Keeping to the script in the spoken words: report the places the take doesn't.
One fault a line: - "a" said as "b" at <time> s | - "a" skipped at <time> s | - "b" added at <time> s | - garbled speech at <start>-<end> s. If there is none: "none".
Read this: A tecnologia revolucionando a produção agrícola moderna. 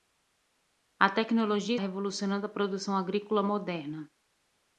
none